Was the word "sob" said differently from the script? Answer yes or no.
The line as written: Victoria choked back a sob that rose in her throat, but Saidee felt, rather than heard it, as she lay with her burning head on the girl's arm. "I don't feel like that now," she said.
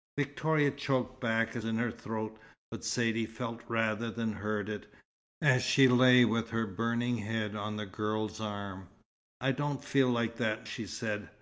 yes